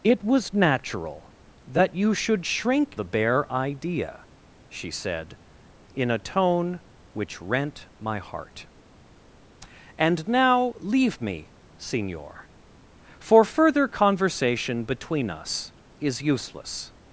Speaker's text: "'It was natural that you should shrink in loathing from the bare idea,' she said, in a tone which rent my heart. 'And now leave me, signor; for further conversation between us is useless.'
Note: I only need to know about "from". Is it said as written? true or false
false